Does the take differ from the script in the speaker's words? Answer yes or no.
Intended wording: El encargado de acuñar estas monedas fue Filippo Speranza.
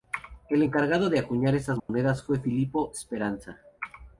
no